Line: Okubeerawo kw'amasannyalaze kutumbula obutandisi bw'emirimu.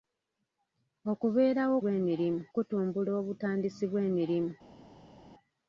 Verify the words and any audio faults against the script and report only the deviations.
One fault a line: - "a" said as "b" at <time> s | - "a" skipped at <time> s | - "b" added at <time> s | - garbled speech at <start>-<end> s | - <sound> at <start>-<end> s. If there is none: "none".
- "kw'amasannyalaze" said as "bw'emirimu" at 1.8 s